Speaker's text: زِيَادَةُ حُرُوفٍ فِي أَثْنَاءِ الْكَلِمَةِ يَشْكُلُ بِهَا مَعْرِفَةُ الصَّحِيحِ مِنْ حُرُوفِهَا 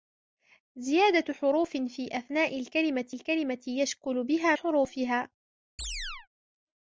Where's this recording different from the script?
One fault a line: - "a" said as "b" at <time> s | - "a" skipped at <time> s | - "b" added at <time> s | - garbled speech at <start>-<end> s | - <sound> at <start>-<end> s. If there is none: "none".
- "الْكَلِمَةِ" added at 3.1 s
- "مَعْرِفَةُ الصَّحِيحِ مِنْ" skipped at 4.6 s
- chirp at 5.8-6.3 s